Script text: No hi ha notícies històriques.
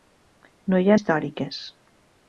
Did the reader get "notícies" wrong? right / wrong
wrong